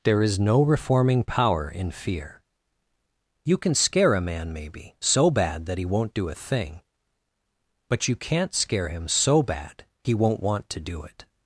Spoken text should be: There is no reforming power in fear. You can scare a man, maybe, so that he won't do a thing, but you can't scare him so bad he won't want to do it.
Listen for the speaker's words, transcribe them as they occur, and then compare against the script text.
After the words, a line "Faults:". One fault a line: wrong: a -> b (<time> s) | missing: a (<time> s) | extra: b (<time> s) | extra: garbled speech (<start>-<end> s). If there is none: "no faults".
There is no reforming power in fear. You can scare a man, maybe, so bad that he won't do a thing, but you can't scare him so bad he won't want to do it.
Faults:
extra: bad (5.3 s)